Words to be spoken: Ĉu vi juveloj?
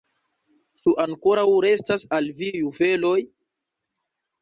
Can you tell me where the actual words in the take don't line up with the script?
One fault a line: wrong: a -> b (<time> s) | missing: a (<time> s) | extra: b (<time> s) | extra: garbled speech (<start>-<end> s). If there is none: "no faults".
extra: ankoraŭ restas al (1.0 s)